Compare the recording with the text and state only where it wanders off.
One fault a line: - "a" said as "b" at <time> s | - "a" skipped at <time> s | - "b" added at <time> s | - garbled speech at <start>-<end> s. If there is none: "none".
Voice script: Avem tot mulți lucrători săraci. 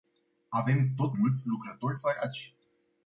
none